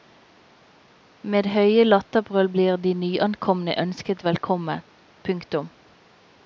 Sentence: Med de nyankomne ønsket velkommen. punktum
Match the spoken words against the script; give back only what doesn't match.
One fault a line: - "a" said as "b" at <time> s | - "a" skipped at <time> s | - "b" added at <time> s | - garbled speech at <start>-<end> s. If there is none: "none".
- "høye latterbrøl blir" added at 1.6 s